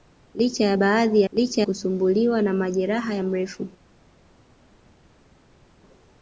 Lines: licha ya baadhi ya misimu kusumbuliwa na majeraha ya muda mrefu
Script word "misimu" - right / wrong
wrong